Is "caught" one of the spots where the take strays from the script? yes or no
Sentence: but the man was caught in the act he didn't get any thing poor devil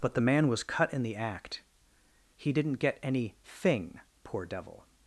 yes